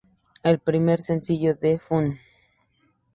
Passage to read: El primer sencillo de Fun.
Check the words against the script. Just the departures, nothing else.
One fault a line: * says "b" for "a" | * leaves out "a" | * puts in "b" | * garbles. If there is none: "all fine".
all fine